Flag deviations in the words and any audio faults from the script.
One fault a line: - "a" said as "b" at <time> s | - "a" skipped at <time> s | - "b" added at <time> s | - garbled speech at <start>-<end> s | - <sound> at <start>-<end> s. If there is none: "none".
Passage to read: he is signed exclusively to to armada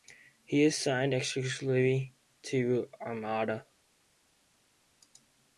- "to" skipped at 2.9 s